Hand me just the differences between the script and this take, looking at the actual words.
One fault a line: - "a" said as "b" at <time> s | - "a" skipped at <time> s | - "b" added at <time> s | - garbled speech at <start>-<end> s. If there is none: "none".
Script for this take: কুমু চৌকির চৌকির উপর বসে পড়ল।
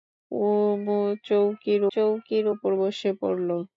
none